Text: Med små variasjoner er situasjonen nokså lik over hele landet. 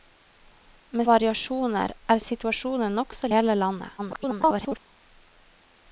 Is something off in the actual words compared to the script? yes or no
yes